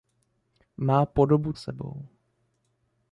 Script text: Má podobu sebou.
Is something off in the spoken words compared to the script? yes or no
no